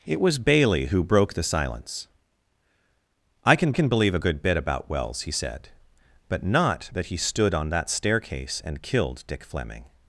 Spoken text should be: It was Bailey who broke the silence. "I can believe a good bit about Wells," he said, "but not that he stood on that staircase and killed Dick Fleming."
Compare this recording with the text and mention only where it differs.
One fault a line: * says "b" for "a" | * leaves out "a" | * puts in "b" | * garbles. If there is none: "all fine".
* puts in "can"